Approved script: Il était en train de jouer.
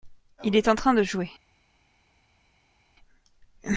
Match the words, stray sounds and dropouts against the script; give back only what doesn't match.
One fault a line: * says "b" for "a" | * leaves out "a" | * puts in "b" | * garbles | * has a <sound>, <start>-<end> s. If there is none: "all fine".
* says "est" for "était"